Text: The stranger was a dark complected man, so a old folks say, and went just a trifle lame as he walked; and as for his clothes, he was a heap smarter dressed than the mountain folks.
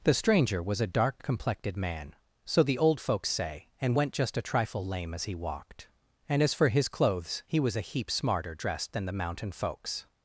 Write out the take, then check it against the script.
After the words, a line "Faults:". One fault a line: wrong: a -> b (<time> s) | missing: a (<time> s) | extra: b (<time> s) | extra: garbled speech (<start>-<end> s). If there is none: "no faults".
The stranger was a dark complected man, so the old folks say, and went just a trifle lame as he walked; and as for his clothes, he was a heap smarter dressed than the mountain folks.
Faults:
wrong: a -> the (2.6 s)